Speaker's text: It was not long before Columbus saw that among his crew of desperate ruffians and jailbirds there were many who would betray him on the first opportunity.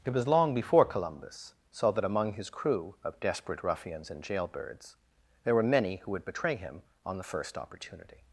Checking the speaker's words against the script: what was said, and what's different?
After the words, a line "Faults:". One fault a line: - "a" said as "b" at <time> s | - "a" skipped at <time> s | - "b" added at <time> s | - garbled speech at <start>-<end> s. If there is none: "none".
It was long before Columbus saw that among his crew of desperate ruffians and jailbirds there were many who would betray him on the first opportunity.
Faults:
- "not" skipped at 0.3 s